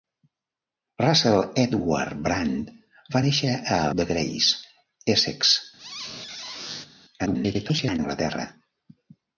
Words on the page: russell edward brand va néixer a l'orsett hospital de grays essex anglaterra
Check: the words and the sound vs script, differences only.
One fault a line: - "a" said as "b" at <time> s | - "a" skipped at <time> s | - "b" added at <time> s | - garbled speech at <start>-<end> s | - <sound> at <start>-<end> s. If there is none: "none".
- "l'orsett hospital" skipped at 3.8 s
- squeak at 5.8-6.9 s
- garbled speech at 7.3-8.0 s